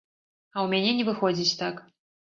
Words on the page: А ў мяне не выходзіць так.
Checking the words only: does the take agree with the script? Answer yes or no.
yes